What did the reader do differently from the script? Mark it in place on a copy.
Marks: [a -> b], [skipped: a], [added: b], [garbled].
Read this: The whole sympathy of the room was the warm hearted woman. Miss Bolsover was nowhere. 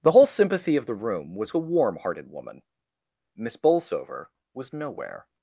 The whole sympathy of the room was the warm hearted woman. Miss Bolsover was nowhere.